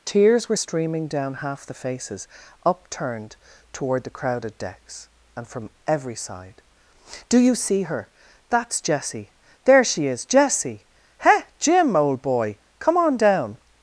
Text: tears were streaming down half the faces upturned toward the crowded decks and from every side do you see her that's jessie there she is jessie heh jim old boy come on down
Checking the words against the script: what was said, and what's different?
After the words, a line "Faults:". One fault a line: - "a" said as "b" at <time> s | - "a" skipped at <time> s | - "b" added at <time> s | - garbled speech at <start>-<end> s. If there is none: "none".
tears were streaming down half the faces upturned toward the crowded decks and from every side do you see her that's jessie there she is jessie heh jim old boy come on down
Faults:
none